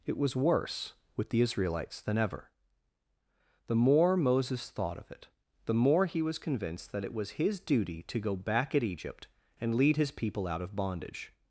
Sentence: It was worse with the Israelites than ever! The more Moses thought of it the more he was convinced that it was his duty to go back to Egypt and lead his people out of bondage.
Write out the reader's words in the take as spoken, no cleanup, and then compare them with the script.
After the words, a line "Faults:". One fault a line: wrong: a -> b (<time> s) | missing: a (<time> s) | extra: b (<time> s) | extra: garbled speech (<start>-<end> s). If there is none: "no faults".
It was worse with the Israelites than ever! The more Moses thought of it the more he was convinced that it was his duty to go back at Egypt and lead his people out of bondage.
Faults:
wrong: to -> at (8.7 s)